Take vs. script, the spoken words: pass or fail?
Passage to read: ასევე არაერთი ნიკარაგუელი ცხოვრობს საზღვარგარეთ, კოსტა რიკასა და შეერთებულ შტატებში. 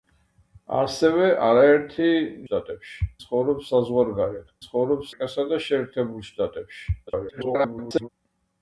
fail